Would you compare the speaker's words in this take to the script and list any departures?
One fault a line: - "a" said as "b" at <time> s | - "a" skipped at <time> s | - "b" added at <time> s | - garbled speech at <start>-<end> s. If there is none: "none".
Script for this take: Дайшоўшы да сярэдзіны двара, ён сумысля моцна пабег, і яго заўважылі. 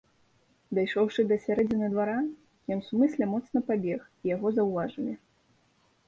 none